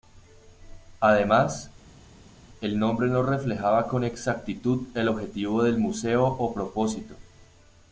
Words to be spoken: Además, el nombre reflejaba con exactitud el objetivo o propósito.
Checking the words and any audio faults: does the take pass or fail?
fail